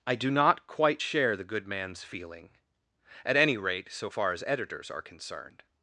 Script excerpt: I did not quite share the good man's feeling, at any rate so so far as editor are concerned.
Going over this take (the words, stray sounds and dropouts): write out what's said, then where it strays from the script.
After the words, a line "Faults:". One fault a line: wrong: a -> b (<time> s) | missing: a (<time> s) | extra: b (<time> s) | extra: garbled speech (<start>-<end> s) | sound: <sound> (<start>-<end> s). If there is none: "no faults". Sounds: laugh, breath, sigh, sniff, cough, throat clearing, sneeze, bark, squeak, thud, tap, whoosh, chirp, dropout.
I do not quite share the good man's feeling, at any rate so far as editors are concerned.
Faults:
wrong: did -> do (0.1 s)
missing: so (4.1 s)
wrong: editor -> editors (4.5 s)